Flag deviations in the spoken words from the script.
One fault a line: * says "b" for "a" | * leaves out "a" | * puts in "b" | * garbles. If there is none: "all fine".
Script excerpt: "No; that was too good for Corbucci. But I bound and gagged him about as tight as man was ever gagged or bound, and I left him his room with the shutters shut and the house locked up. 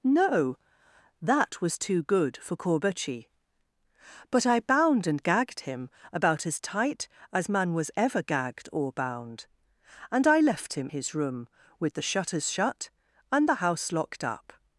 all fine